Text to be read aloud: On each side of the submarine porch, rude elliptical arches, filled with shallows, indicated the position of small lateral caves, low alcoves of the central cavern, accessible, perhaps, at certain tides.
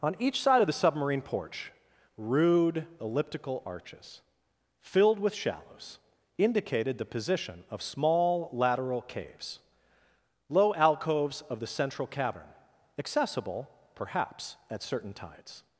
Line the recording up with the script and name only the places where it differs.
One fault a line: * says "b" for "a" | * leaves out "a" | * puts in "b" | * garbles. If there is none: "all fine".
all fine